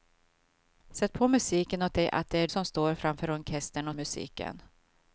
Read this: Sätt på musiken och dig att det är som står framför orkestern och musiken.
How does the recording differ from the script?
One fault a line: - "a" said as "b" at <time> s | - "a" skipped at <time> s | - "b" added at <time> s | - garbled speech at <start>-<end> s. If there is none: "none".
none